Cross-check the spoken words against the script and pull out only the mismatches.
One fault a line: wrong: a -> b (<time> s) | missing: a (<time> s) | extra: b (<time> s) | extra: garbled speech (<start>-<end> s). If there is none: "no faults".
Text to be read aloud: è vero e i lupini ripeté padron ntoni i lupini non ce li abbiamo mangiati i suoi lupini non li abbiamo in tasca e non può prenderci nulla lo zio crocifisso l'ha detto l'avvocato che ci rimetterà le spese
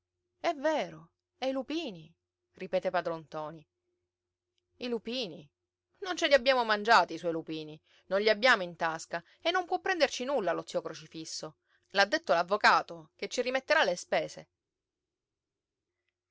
no faults